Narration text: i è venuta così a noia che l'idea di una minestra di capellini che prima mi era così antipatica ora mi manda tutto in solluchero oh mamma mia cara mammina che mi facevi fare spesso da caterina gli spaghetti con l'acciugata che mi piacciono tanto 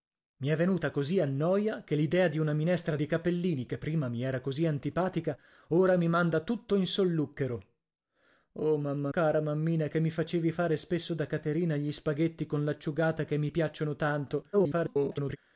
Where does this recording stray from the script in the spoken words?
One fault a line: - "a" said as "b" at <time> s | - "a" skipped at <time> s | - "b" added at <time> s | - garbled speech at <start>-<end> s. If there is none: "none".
- "mia" skipped at 9.1 s
- garbled speech at 14.5-15.4 s